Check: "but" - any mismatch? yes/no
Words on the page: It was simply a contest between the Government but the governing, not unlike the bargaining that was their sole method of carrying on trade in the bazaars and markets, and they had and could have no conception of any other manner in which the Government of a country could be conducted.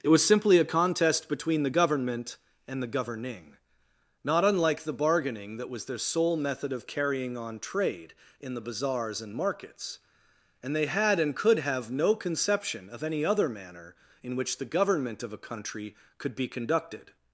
yes